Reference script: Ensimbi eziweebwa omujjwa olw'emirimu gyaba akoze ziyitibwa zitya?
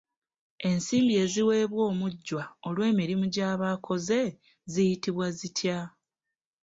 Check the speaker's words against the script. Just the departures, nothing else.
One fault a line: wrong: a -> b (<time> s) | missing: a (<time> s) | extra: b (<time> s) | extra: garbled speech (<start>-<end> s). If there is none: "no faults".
no faults